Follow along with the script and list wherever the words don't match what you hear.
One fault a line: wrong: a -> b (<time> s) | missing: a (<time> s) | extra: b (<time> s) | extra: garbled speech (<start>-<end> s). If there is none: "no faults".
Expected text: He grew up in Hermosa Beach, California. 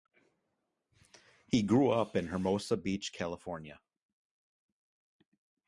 no faults